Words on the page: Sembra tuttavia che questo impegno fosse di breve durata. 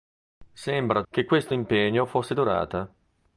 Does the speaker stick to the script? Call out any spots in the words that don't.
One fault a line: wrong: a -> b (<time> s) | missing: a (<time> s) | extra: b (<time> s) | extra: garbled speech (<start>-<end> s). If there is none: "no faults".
missing: tuttavia (1.0 s)
missing: di breve (2.3 s)